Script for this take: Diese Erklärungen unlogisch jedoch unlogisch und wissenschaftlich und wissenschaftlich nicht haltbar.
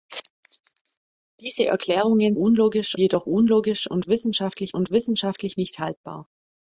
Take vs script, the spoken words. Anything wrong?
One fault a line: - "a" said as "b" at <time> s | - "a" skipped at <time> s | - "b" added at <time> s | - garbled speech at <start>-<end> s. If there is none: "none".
none